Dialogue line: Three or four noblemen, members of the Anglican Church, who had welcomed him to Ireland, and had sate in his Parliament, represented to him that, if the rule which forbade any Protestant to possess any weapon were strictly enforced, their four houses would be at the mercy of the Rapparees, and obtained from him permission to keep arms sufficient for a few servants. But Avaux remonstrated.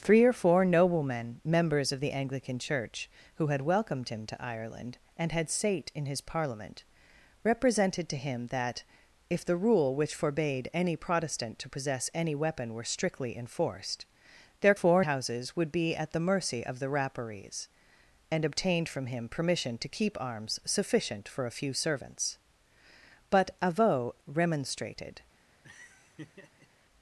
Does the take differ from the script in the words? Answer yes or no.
no